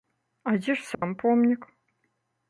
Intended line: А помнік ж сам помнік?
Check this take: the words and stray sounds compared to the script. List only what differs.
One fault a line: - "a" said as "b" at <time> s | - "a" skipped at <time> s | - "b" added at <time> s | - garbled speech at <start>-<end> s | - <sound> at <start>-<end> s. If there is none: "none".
- "помнік" said as "дзе" at 0.6 s
- dropout at 0.9-1.0 s